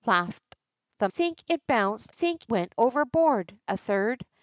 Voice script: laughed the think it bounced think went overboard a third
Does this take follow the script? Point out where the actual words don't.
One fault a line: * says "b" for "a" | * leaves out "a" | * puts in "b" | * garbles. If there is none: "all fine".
all fine